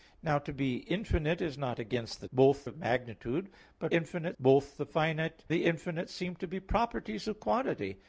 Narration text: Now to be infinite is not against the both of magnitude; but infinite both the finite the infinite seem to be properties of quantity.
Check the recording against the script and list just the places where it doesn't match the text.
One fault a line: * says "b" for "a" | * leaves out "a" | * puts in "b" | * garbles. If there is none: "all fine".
all fine